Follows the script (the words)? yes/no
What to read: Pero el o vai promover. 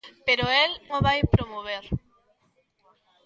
yes